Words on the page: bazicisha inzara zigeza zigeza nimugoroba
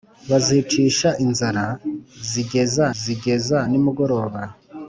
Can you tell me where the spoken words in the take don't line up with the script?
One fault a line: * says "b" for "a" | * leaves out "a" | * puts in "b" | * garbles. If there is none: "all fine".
all fine